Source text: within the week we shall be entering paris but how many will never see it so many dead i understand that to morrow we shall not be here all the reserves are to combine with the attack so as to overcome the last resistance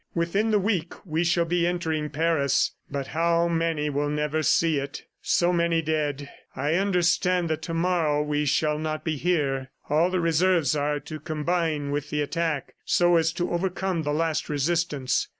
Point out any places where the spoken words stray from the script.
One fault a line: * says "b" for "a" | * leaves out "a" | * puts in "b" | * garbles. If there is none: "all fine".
all fine